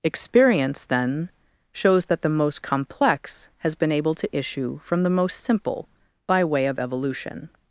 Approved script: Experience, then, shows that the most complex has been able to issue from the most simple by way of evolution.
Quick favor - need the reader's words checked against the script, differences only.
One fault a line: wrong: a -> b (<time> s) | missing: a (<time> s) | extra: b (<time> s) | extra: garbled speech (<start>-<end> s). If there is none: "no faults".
no faults